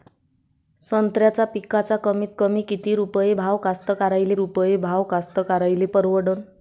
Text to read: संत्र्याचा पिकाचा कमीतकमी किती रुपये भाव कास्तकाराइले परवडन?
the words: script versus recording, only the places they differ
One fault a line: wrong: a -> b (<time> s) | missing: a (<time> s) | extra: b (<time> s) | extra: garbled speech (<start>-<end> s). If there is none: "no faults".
extra: रुपये भाव कास्तकाराइले (4.4 s)